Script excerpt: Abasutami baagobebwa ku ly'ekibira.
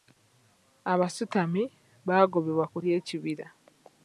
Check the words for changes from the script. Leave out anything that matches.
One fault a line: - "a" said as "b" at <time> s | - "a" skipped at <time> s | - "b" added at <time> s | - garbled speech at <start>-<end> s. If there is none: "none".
none